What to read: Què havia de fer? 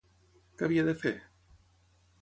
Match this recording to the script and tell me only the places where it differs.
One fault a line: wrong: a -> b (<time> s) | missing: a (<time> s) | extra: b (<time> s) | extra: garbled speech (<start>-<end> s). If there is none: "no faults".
no faults